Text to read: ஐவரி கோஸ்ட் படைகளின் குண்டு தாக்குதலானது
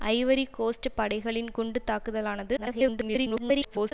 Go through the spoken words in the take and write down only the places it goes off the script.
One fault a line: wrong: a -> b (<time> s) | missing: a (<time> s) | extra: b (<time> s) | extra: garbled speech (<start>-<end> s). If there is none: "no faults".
extra: garbled speech (2.6-3.9 s)